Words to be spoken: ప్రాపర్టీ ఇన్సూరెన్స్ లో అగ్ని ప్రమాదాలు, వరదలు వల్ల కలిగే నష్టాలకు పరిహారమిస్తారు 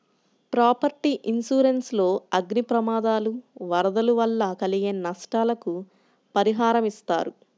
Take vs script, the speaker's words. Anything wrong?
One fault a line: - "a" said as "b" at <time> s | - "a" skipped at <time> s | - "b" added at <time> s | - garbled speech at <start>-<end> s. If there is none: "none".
none